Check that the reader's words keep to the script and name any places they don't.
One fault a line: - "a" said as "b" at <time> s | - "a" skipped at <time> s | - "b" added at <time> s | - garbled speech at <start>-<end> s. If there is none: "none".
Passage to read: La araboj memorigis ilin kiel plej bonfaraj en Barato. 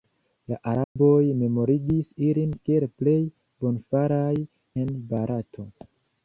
none